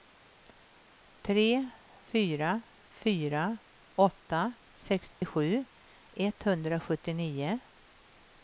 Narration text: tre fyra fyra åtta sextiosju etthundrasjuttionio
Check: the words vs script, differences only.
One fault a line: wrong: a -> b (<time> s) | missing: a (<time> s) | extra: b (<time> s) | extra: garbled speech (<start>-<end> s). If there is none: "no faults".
no faults